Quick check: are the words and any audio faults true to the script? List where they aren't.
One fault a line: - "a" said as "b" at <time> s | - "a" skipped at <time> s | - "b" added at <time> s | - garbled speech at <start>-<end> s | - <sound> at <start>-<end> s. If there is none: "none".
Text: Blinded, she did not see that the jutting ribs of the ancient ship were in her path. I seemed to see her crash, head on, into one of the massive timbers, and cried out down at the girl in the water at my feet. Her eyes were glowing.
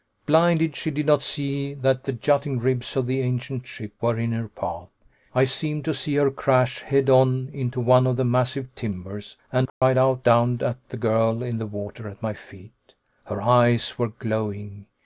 - dropout at 9.7-9.8 s